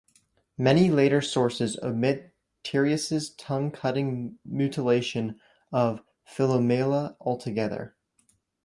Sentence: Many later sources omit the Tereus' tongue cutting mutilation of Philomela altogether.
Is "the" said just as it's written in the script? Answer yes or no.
no